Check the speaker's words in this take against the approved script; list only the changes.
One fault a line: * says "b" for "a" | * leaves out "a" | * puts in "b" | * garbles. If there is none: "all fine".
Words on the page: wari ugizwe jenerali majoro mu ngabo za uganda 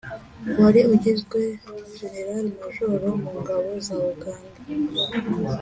all fine